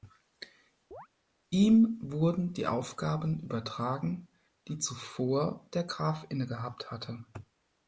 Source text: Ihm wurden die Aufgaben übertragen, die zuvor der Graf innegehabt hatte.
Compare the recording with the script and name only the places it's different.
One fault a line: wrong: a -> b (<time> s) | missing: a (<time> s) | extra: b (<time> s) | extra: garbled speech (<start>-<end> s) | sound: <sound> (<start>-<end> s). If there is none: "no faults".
sound: chirp (0.9-1.1 s)